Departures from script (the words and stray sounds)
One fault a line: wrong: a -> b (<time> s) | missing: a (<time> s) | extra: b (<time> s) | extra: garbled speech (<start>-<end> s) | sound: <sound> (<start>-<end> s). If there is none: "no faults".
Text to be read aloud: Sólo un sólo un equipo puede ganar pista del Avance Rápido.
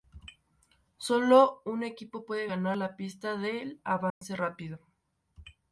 missing: sólo un (1.8 s)
extra: la (2.7 s)
sound: dropout (4.1-4.2 s)